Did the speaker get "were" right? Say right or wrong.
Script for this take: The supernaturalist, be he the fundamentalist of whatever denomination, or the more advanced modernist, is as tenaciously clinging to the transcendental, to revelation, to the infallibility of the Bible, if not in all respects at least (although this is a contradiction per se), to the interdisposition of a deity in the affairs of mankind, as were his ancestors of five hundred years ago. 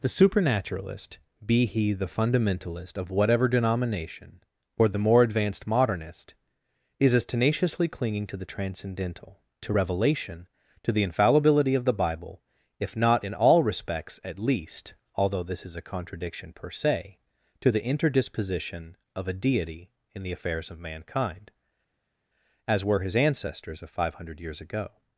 right